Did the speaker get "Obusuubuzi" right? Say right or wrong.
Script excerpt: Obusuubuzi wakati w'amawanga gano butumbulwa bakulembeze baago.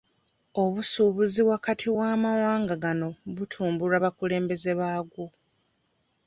right